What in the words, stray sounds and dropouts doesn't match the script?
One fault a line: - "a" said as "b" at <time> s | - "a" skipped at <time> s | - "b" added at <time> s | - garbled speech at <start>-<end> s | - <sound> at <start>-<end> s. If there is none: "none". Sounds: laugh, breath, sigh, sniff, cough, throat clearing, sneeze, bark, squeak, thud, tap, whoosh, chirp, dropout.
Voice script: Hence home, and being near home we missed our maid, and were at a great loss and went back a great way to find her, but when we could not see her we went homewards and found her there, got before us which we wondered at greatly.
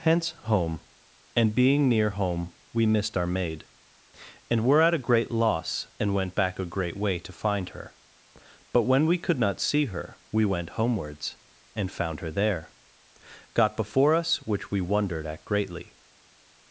none